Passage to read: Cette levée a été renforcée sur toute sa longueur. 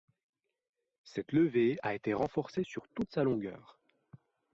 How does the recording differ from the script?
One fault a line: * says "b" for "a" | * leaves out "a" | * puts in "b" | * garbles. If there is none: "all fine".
all fine